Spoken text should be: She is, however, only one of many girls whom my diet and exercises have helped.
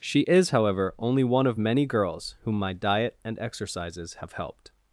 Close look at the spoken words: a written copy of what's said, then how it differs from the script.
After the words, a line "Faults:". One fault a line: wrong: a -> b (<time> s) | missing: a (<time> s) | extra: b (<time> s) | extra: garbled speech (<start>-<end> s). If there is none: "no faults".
She is, however, only one of many girls whom my diet and exercises have helped.
Faults:
no faults